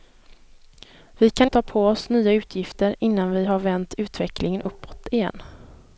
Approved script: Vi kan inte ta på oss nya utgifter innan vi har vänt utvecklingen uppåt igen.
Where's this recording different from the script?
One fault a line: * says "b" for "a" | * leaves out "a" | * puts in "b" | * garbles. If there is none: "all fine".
* leaves out "inte"